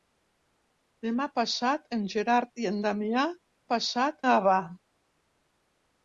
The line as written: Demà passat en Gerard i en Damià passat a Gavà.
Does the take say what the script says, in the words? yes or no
yes